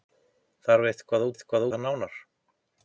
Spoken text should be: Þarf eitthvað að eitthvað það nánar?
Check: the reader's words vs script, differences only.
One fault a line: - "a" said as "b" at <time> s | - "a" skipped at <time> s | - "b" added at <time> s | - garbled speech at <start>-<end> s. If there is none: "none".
none